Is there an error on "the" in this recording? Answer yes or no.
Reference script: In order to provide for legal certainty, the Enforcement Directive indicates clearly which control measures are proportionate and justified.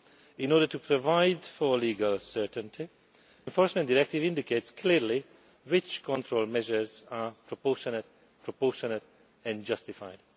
yes